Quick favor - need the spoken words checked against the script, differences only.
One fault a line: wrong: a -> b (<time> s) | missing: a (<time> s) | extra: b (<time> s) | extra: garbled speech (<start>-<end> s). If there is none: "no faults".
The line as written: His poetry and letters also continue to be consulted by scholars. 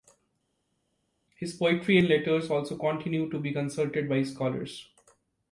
no faults